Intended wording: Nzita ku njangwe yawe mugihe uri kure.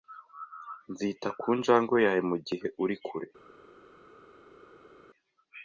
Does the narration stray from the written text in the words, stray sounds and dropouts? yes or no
no